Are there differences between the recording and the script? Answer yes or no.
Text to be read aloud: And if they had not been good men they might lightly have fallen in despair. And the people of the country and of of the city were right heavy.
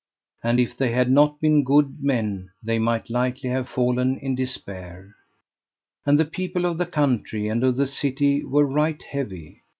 yes